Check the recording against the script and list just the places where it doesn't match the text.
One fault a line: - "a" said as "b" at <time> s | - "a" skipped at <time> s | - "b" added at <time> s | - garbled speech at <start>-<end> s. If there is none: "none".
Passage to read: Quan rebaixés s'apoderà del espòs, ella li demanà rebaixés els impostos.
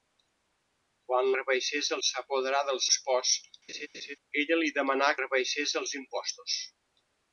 none